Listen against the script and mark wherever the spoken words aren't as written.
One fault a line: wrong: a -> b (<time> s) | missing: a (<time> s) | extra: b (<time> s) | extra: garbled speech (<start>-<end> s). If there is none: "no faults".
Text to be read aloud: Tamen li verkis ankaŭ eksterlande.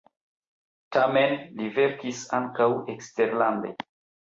no faults